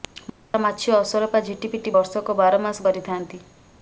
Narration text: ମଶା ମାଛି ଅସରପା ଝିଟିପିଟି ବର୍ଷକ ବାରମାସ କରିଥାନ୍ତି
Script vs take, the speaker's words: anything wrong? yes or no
no